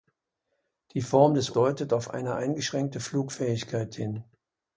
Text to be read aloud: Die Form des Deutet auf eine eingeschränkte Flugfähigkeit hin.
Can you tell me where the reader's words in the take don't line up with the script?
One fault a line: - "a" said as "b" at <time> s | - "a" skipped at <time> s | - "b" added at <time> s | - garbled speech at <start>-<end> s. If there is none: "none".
none